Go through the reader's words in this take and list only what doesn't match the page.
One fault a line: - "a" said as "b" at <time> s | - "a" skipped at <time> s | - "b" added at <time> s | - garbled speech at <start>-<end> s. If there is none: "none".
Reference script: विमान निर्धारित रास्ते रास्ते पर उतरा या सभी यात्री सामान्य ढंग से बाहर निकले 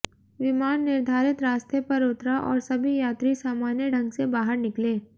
- "रास्ते" skipped at 1.8 s
- "या" said as "और" at 2.4 s